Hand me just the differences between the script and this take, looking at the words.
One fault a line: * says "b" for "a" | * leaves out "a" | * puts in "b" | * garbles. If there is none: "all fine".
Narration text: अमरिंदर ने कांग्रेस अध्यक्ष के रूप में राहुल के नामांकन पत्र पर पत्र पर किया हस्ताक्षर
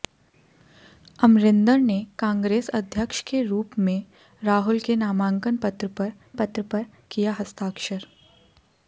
all fine